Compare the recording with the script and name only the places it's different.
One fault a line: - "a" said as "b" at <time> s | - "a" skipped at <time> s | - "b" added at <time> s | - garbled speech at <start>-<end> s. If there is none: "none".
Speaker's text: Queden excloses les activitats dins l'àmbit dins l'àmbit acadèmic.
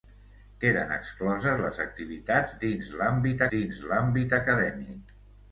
none